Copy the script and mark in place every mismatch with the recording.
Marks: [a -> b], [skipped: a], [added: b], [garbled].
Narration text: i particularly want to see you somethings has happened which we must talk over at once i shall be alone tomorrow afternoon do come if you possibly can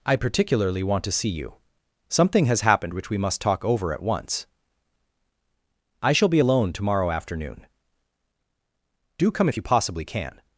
i particularly want to see you [somethings -> something] has happened which we must talk over at once i shall be alone tomorrow afternoon do come if you possibly can